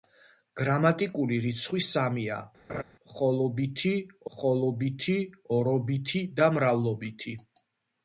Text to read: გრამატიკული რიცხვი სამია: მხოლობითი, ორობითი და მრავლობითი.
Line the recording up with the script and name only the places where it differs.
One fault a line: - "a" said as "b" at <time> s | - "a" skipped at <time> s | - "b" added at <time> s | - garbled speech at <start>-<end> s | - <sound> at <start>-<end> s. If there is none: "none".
- laugh at 2.7-2.8 s
- "მხოლობითი" added at 4.4 s